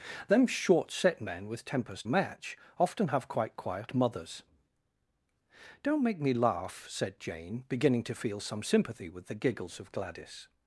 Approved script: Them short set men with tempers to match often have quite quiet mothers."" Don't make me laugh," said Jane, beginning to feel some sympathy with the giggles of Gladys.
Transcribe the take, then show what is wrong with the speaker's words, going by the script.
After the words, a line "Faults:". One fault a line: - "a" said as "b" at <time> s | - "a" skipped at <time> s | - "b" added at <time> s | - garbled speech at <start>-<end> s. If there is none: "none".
Them short set men with tempers match often have quite quiet mothers."" Don't make me laugh," said Jane, beginning to feel some sympathy with the giggles of Gladys.
Faults:
- "to" skipped at 2.0 s